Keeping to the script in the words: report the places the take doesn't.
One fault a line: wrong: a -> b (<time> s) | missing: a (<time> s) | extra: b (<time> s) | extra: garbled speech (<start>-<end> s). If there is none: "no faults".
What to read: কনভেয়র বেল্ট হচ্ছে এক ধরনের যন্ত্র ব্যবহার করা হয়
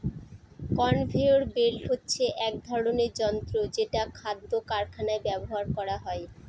extra: যেটা খাদ্য কারখানায় (3.7 s)